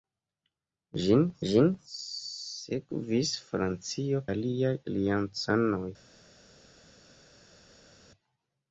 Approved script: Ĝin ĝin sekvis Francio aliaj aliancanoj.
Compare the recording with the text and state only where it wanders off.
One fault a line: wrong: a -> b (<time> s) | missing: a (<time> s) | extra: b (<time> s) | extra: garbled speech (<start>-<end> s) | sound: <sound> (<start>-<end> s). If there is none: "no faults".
no faults